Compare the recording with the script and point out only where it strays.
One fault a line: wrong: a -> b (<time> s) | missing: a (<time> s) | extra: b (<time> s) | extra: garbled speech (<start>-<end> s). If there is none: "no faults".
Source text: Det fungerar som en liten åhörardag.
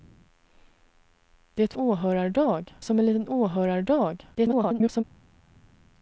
wrong: fungerar -> åhörardag (1.7 s)
extra: garbled speech (4.3-5.0 s)